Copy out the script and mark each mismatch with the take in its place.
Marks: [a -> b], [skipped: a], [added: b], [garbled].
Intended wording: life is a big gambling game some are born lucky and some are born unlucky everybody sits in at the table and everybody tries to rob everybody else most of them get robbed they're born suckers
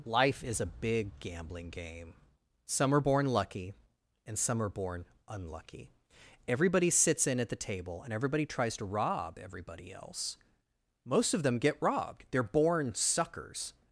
life is a big gambling game some are born lucky and some are born unlucky everybody sits in at the table and everybody tries to rob everybody else most of them get robbed they're born suckers